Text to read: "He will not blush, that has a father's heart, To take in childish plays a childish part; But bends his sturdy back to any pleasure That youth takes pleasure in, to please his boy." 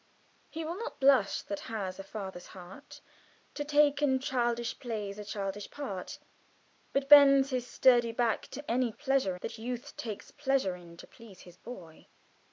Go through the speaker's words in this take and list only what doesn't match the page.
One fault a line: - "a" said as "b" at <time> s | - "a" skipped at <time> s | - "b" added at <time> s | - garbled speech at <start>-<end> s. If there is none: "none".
none